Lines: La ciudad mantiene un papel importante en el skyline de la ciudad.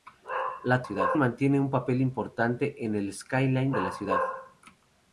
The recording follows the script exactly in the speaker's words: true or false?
true